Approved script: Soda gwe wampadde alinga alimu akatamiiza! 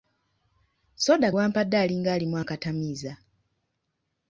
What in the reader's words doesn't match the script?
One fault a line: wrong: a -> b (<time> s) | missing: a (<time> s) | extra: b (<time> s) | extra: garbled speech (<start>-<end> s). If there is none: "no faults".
missing: gwe (1.3 s)